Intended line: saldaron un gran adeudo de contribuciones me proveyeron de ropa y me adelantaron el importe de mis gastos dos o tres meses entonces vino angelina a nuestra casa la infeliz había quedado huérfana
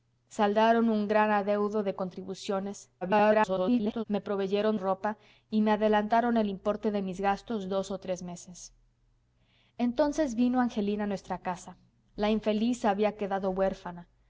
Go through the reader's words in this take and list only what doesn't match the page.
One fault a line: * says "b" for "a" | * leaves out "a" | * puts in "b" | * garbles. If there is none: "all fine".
* garbles
* leaves out "de"